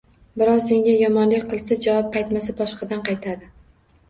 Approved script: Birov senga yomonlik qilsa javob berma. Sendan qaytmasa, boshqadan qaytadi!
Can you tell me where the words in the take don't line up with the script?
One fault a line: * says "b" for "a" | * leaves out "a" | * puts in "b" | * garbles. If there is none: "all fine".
* leaves out "berma Sendan"